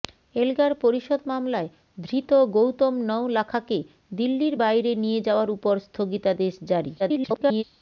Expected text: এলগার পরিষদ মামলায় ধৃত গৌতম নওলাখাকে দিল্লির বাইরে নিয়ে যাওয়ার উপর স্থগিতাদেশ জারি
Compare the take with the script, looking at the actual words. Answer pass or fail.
fail